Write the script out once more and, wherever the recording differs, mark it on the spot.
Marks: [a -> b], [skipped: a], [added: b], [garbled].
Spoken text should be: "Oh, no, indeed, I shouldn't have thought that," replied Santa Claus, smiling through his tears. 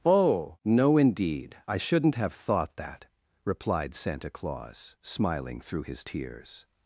"Oh, no, indeed, I shouldn't have thought that," replied Santa Claus, smiling through his tears.